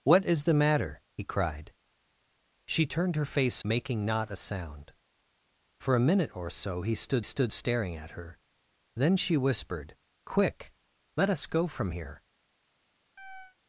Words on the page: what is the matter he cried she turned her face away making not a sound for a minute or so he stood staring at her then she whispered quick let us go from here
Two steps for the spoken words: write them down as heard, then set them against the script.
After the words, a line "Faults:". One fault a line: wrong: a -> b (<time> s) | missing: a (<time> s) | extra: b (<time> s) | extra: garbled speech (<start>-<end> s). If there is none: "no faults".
what is the matter he cried she turned her face making not a sound for a minute or so he stood stood staring at her then she whispered quick let us go from here
Faults:
missing: away (3.6 s)
extra: stood (7.2 s)